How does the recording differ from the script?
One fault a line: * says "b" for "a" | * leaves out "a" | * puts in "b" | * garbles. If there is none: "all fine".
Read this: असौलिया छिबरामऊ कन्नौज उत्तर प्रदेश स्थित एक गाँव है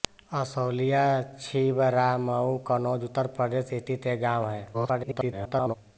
* garbles